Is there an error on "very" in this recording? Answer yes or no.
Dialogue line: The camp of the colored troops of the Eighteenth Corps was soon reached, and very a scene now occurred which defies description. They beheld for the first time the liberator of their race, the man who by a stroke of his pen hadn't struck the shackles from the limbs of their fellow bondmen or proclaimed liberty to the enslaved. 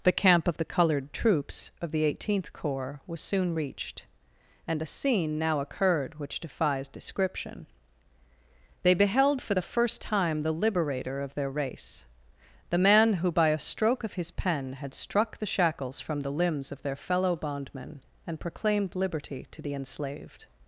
yes